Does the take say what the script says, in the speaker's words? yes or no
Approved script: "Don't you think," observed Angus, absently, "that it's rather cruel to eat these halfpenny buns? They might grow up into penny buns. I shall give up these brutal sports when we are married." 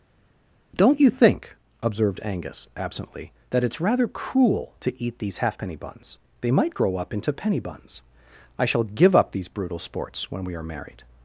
yes